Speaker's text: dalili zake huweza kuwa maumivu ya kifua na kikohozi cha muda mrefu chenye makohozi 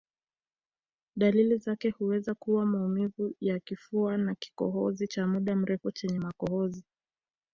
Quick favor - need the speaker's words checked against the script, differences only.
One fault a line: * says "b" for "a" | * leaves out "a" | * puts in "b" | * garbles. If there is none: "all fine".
all fine